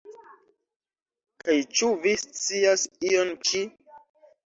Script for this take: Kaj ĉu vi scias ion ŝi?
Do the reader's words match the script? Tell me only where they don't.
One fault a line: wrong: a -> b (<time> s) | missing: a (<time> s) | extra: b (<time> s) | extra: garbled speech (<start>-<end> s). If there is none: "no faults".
no faults